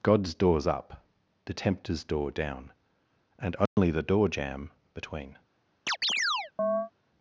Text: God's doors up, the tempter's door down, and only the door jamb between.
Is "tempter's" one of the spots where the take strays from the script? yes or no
no